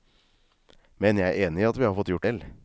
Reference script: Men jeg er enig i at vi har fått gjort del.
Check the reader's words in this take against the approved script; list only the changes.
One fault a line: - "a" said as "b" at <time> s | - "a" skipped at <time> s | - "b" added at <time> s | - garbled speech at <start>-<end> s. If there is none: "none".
none